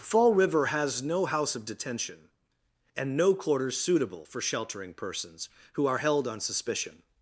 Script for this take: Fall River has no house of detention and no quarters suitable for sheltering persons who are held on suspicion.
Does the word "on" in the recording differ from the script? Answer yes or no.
no